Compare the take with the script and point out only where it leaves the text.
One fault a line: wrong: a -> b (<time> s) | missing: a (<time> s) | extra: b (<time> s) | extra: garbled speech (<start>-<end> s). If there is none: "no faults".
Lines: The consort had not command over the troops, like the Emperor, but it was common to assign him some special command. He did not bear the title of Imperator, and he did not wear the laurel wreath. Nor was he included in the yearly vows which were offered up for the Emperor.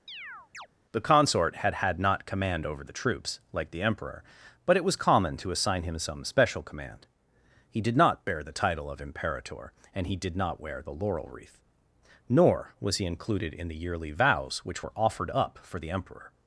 extra: had (1.7 s)